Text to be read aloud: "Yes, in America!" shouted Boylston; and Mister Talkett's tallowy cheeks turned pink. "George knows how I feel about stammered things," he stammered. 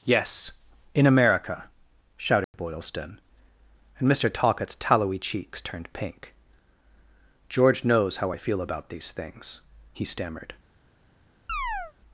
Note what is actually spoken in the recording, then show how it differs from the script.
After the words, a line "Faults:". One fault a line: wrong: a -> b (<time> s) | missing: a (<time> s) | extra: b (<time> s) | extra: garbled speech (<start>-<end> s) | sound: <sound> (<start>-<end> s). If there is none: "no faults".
"Yes, in America!" shouted Boylston; and Mister Talkett's tallowy cheeks turned pink. "George knows how I feel about these things," he stammered.
Faults:
sound: dropout (2.4-2.5 s)
wrong: stammered -> these (8.9 s)
sound: chirp (11.5-11.9 s)